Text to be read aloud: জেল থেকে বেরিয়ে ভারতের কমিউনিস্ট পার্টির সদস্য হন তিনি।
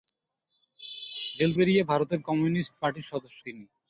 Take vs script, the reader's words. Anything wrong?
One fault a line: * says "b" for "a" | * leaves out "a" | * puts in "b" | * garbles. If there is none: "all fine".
* leaves out "থেকে"
* leaves out "হন"